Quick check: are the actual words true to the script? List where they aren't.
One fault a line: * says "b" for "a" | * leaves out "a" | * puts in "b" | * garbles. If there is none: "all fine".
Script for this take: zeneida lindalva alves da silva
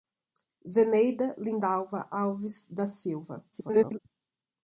* garbles